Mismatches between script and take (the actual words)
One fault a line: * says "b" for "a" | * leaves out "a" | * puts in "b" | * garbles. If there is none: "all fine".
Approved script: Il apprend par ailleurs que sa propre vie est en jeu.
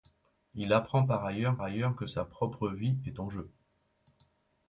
* puts in "ailleurs"